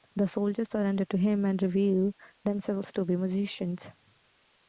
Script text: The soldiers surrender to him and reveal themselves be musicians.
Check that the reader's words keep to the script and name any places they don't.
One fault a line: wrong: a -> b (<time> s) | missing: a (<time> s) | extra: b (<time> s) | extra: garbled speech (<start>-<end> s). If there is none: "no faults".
extra: to (2.9 s)